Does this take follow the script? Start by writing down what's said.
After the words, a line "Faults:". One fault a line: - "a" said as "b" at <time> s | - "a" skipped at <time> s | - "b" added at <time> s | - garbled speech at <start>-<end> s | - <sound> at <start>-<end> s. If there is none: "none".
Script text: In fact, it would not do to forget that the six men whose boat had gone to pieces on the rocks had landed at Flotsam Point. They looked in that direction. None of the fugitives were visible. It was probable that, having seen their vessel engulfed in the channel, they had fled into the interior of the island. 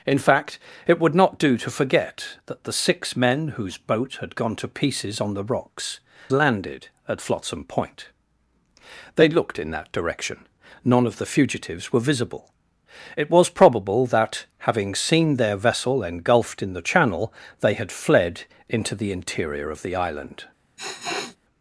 In fact, it would not do to forget that the six men whose boat had gone to pieces on the rocks landed at Flotsam Point. They looked in that direction. None of the fugitives were visible. It was probable that, having seen their vessel engulfed in the channel, they had fled into the interior of the island.
Faults:
- "had" skipped at 6.0 s
- sniff at 20.8-21.4 s